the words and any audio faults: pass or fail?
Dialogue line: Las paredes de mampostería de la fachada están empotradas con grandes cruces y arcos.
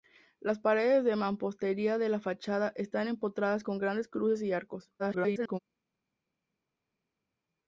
fail